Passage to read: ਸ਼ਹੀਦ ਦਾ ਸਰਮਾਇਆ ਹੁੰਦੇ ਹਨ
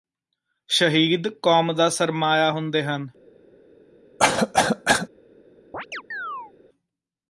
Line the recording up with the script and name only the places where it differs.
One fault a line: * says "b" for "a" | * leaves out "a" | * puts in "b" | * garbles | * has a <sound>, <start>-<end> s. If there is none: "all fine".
* puts in "ਕੌਮ"
* has a cough, 4.2-5.1 s
* has a chirp, 5.7-6.5 s